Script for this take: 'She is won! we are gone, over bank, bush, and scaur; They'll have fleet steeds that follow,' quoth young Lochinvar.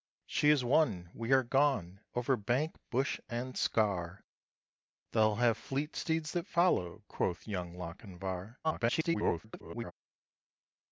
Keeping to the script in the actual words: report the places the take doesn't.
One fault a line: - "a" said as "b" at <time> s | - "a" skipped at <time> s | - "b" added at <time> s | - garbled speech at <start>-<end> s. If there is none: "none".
- garbled speech at 8.6-9.9 s